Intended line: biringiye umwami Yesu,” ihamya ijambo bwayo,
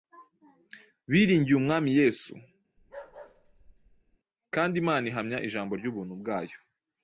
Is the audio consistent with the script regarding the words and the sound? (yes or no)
no